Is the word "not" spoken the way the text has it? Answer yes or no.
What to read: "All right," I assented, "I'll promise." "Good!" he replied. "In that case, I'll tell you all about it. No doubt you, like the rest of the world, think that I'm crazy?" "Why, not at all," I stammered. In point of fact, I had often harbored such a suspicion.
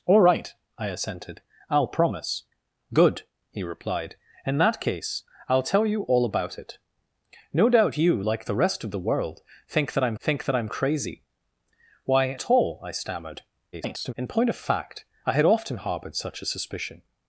no